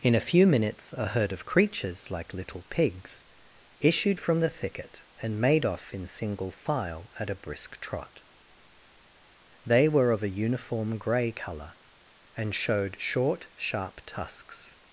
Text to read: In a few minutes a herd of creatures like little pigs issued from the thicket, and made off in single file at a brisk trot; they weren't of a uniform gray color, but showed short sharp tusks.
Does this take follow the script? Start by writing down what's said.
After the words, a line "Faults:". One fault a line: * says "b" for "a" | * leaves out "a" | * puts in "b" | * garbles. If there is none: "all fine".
In a few minutes a herd of creatures like little pigs issued from the thicket, and made off in single file at a brisk trot; they were of a uniform gray color, and showed short sharp tusks.
Faults:
* says "were" for "weren't"
* says "and" for "but"